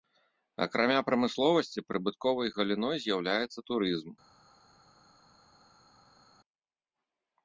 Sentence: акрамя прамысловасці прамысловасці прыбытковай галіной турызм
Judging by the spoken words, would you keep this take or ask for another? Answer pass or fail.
fail